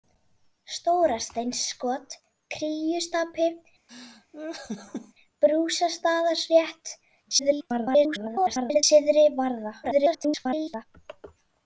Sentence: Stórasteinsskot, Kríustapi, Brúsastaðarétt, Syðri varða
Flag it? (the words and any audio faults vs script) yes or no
yes